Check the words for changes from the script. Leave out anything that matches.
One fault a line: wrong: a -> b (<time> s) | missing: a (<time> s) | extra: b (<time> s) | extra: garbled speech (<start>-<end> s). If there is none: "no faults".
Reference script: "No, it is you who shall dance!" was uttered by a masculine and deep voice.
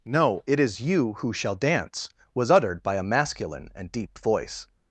no faults